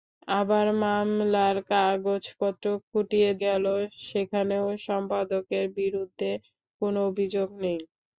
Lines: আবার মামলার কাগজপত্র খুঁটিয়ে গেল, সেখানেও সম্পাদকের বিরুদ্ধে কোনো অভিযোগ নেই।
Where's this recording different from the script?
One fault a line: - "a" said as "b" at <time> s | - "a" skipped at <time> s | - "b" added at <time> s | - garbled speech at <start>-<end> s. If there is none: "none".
none